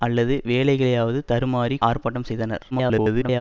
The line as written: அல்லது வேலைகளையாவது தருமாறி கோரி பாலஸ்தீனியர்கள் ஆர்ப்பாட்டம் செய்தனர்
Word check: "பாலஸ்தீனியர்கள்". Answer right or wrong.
wrong